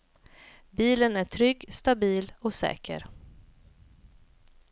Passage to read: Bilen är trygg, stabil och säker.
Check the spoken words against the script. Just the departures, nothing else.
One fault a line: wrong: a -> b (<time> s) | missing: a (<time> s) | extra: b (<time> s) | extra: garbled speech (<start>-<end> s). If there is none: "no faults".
no faults